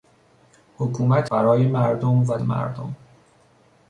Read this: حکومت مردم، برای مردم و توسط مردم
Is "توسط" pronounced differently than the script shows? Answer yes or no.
yes